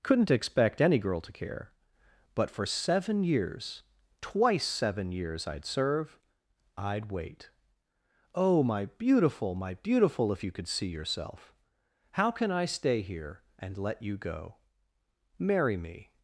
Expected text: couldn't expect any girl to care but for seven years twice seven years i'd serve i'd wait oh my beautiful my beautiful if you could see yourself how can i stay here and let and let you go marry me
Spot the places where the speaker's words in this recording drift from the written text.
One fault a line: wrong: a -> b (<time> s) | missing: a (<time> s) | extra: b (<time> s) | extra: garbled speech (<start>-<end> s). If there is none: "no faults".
missing: and let (14.0 s)